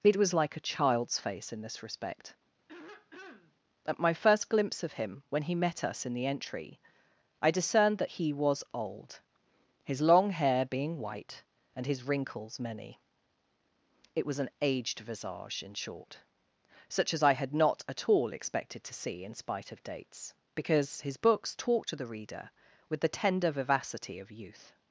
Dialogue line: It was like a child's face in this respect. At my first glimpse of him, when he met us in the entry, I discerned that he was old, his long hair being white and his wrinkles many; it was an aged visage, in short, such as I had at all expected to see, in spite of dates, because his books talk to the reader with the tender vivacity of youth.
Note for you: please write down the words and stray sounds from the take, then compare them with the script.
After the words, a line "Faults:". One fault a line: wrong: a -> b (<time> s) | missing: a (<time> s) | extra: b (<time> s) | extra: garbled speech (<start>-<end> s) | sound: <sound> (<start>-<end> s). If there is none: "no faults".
It was like a child's face in this respect. At my first glimpse of him, when he met us in the entry, I discerned that he was old, his long hair being white and his wrinkles many; it was an aged visage, in short, such as I had not at all expected to see, in spite of dates, because his books talk to the reader with the tender vivacity of youth.
Faults:
sound: throat clearing (2.7-3.6 s)
extra: not (17.5 s)